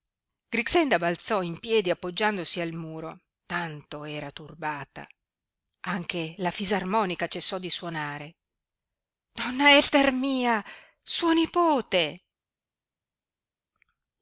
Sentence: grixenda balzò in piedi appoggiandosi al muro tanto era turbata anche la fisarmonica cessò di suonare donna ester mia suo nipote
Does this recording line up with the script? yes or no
yes